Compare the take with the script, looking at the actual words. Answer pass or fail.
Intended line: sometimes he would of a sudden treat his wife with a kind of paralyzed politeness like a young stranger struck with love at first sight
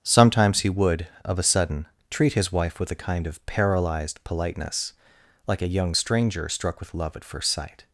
pass